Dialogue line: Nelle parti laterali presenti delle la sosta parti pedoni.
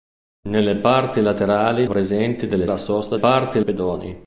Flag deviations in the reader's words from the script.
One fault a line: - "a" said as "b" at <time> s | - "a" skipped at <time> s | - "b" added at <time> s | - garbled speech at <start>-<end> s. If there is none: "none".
none